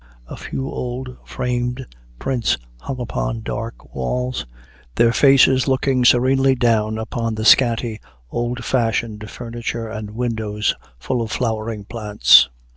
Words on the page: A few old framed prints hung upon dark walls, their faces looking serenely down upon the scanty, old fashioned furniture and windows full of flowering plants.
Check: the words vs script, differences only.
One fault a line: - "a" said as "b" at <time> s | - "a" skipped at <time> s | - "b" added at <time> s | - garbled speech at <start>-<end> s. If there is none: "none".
none